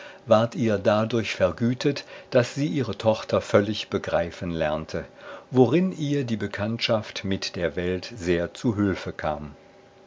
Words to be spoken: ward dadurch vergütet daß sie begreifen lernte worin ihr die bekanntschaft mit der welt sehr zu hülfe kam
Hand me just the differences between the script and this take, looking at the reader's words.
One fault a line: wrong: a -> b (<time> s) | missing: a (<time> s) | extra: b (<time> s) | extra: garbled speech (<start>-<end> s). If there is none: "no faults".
extra: ihr (0.6 s)
extra: ihre tochter völlig (2.6 s)